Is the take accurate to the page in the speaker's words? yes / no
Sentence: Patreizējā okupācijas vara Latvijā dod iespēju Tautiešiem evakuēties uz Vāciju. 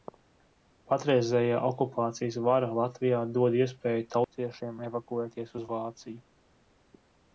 yes